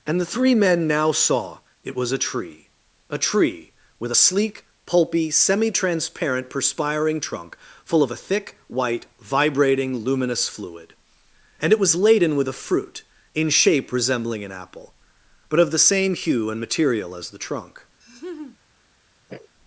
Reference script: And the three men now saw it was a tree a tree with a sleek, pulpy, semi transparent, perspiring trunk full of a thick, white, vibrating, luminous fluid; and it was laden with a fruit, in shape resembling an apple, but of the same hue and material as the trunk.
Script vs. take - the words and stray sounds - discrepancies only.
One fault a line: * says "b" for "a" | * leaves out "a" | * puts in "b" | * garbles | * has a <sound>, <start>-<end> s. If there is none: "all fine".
* has a laugh, 18.0-18.6 s
* has a sniff, 19.3-19.5 s